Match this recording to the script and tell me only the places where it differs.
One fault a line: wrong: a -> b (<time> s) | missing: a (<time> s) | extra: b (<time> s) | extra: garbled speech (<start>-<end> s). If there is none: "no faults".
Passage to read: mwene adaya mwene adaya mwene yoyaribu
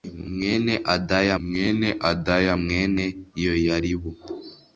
no faults